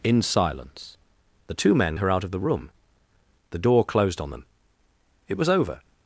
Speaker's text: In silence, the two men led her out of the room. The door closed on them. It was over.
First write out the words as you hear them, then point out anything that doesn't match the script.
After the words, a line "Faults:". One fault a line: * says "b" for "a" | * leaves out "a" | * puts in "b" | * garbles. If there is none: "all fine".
In silence, the two men her out of the room. The door closed on them. It was over.
Faults:
* leaves out "led"